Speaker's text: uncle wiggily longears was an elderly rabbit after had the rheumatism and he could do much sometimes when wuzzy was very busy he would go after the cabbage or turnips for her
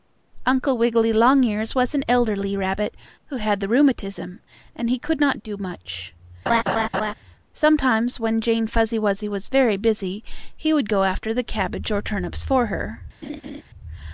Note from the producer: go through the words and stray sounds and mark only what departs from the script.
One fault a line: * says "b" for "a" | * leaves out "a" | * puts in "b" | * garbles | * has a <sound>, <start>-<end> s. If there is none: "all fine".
* says "who" for "after"
* puts in "not"
* has a laugh, 6.5-7.1 s
* puts in "jane fuzzy"
* has a laugh, 13.2-13.6 s